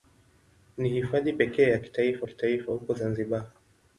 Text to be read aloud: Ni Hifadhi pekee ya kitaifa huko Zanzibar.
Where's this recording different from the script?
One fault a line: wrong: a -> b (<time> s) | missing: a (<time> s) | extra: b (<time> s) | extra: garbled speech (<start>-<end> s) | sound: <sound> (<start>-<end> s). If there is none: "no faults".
extra: kitaifa (2.2 s)